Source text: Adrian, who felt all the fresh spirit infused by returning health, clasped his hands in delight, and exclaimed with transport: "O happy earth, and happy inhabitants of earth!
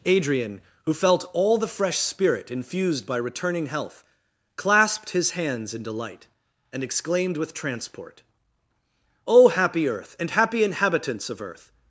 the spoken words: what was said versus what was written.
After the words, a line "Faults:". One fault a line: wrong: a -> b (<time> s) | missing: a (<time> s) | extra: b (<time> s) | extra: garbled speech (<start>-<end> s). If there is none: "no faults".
Adrian, who felt all the fresh spirit infused by returning health, clasped his hands in delight, and exclaimed with transport: "O happy earth, and happy inhabitants of earth!
Faults:
no faults